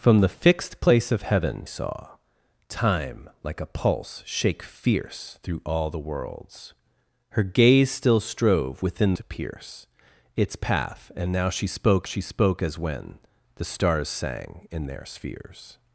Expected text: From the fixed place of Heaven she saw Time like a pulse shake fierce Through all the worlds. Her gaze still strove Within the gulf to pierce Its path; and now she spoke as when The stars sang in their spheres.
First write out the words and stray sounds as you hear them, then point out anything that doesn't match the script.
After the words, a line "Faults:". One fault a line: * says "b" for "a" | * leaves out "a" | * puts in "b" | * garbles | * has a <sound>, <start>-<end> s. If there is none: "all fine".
From the fixed place of Heaven saw Time like a pulse shake fierce Through all the worlds. Her gaze still strove Within to pierce Its path; and now she spoke she spoke as when The stars sang in their spheres.
Faults:
* leaves out "she"
* leaves out "the gulf"
* puts in "she spoke"